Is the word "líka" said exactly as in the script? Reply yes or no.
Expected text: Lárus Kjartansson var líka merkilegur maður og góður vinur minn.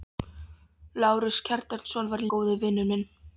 no